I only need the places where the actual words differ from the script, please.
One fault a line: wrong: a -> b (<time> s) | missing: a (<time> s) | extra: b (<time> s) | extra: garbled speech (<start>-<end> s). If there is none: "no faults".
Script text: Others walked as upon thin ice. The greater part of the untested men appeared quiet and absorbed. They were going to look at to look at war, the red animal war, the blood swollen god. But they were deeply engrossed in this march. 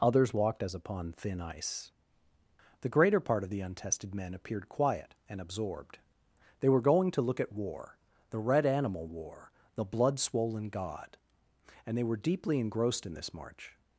missing: to look at (7.5 s)
wrong: But -> And (11.9 s)